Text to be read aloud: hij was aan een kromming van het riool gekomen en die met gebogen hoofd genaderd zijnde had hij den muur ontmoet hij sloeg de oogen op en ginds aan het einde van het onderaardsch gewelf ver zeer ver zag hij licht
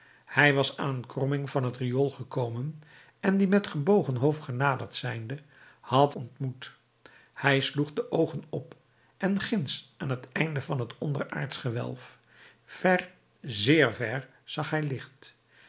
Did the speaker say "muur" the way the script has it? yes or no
no